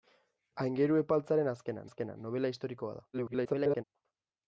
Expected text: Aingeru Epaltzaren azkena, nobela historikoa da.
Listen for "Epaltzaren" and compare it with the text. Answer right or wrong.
right